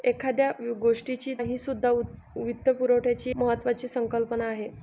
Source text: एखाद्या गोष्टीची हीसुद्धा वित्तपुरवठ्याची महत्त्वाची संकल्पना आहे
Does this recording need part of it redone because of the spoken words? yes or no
no